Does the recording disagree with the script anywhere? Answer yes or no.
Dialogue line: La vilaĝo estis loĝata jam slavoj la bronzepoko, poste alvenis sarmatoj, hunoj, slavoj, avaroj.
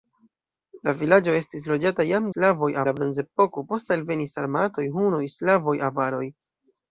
no